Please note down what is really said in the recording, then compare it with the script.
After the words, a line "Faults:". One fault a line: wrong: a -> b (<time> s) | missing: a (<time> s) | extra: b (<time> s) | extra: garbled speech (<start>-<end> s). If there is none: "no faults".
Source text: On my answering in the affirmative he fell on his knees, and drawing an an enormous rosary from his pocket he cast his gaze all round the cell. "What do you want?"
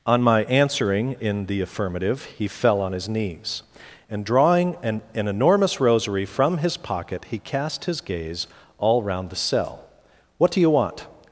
On my answering in the affirmative he fell on his knees, and drawing an an enormous rosary from his pocket he cast his gaze all round the cell. "What do you want?"
Faults:
no faults